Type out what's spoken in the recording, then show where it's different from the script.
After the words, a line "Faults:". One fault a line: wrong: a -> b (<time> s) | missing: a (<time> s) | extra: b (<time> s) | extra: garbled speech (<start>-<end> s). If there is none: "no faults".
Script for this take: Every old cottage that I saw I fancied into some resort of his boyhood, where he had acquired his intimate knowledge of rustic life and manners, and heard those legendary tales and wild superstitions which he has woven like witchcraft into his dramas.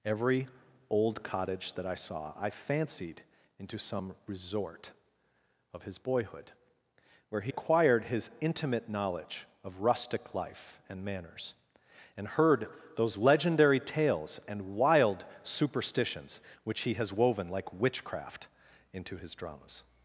Every old cottage that I saw I fancied into some resort of his boyhood, where he acquired his intimate knowledge of rustic life and manners, and heard those legendary tales and wild superstitions which he has woven like witchcraft into his dramas.
Faults:
missing: had (7.5 s)